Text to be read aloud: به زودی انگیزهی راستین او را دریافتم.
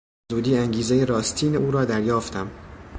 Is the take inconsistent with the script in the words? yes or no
no